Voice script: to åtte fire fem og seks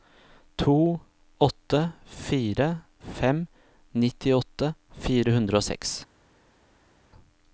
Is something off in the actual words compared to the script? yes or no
yes